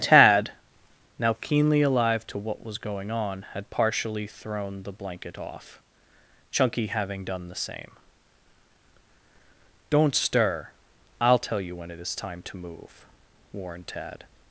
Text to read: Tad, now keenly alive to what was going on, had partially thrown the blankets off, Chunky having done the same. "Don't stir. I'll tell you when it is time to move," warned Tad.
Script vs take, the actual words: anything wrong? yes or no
yes